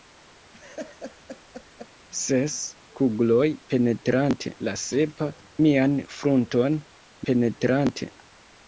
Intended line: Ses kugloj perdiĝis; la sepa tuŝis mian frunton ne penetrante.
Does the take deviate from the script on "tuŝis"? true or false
true